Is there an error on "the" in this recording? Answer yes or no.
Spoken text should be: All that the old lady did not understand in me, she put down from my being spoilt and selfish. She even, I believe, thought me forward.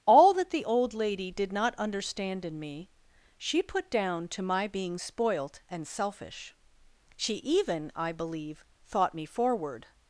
no